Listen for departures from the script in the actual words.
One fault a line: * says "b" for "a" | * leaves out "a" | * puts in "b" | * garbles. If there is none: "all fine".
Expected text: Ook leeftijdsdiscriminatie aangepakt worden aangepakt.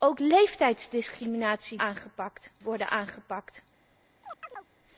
all fine